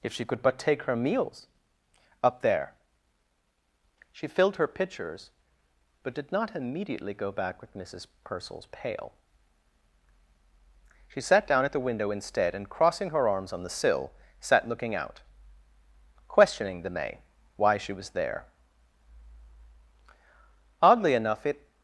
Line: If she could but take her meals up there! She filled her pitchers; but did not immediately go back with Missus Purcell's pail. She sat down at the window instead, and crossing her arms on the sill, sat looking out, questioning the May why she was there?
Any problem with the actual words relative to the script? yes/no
yes